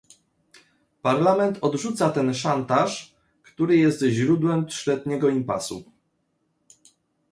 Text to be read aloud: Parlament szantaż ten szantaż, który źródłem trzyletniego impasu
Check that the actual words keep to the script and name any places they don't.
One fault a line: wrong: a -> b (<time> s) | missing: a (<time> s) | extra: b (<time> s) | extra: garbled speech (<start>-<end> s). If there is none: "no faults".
wrong: szantaż -> odrzuca (1.6 s)
extra: jest (3.8 s)